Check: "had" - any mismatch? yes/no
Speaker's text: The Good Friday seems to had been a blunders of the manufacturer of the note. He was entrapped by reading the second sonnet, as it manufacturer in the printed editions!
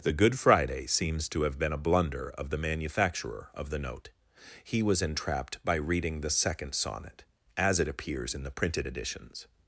yes